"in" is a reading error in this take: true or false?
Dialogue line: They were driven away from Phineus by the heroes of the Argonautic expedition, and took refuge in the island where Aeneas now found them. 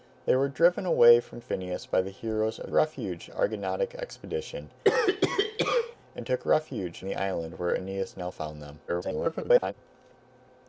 true